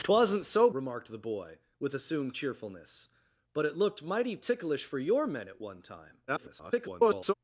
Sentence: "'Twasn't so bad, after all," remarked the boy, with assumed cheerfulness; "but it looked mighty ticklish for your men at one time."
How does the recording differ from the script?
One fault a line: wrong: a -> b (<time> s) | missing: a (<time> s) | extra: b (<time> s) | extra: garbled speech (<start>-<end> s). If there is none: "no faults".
missing: bad after all (0.7 s)
extra: garbled speech (6.3-7.3 s)